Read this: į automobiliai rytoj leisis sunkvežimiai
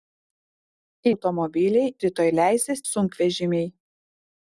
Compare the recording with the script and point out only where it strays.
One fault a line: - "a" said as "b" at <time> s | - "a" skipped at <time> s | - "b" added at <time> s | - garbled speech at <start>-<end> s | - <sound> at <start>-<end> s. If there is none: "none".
none